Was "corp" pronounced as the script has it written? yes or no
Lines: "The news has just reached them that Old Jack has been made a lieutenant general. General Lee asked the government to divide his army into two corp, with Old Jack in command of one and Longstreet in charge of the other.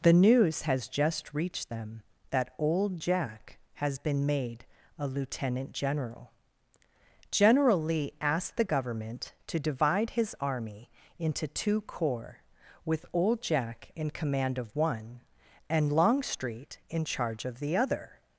no